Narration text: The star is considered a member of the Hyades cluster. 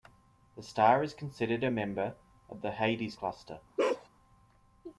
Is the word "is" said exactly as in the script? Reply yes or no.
yes